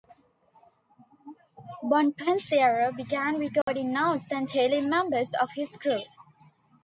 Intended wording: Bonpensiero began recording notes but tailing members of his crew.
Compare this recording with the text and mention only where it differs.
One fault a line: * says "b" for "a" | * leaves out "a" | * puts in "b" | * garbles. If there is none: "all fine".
* says "and" for "but"